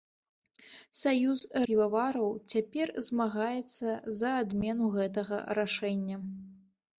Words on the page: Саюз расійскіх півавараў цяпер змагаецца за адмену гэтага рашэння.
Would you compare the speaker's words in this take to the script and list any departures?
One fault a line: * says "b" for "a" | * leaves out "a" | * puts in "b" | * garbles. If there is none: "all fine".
* leaves out "расійскіх"